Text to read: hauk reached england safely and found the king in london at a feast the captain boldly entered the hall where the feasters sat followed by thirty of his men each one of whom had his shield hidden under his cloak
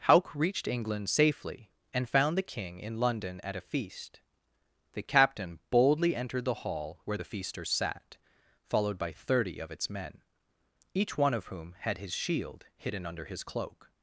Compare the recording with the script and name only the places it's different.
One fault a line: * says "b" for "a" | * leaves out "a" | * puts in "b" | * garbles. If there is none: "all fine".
* says "its" for "his"